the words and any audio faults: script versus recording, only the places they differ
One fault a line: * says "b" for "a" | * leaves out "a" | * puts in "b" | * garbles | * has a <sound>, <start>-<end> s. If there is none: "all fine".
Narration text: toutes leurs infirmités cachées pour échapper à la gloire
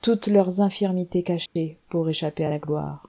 * has a dropout, 1.5-1.6 s